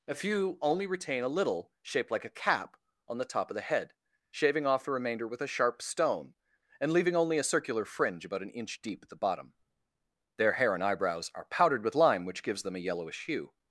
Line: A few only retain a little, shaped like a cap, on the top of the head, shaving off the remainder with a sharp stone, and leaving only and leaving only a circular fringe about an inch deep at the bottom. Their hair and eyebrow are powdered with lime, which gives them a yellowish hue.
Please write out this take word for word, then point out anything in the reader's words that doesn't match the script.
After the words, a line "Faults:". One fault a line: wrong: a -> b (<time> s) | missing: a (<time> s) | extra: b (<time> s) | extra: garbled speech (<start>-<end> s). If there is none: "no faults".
A few only retain a little, shaped like a cap, on the top of the head, shaving off the remainder with a sharp stone, and leaving only a circular fringe about an inch deep at the bottom. Their hair and eyebrows are powdered with lime, which gives them a yellowish hue.
Faults:
missing: and leaving only (7.4 s)
wrong: eyebrow -> eyebrows (10.8 s)